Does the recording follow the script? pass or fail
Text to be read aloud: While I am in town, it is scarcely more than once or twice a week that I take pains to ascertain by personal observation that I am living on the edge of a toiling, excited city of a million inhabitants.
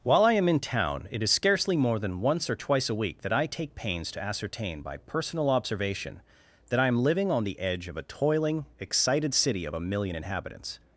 pass